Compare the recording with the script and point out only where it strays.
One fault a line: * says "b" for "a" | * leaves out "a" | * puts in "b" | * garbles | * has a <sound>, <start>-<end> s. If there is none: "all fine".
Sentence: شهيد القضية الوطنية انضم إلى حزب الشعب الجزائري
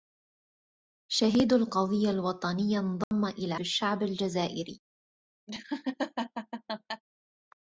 * has a dropout, 3.0-3.1 s
* leaves out "حزب"
* has a laugh, 5.5-7.0 s